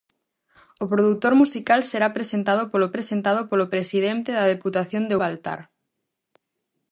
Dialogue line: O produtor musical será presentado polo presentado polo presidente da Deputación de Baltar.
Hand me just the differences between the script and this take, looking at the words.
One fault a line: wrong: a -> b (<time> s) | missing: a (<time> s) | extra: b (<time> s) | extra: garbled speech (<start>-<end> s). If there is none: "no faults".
no faults